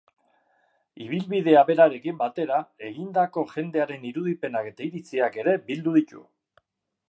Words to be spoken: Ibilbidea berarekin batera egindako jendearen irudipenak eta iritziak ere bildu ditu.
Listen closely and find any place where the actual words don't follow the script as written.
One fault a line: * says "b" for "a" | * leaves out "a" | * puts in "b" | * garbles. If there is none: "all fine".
all fine